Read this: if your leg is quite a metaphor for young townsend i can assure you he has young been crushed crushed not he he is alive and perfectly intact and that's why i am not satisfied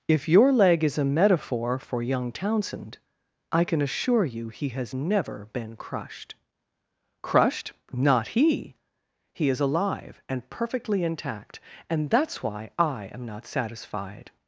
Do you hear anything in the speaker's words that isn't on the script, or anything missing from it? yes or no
yes